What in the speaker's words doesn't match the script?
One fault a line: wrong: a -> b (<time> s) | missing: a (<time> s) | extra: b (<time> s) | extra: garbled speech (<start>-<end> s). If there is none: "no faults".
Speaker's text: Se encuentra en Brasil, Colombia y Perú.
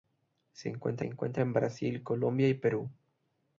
extra: encuentra (1.0 s)